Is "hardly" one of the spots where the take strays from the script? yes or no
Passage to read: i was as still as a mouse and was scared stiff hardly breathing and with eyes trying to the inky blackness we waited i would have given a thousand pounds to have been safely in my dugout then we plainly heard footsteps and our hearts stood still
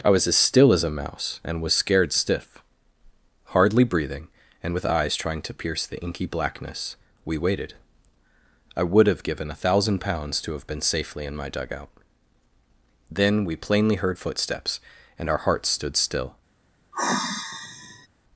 no